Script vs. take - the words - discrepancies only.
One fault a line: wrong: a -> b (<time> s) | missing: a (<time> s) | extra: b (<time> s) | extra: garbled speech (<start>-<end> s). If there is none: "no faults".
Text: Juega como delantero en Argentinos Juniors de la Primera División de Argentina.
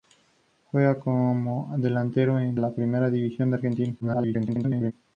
missing: Argentinos Juniors de (2.6 s)
extra: garbled speech (4.0-4.9 s)